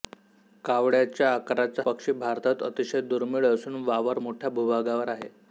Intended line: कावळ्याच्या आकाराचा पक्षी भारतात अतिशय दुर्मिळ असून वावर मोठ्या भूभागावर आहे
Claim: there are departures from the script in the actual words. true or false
false